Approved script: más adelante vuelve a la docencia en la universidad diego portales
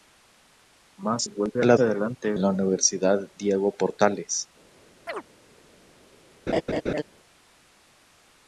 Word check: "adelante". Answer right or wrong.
wrong